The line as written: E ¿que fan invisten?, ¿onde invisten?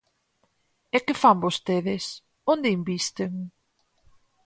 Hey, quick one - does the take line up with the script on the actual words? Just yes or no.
no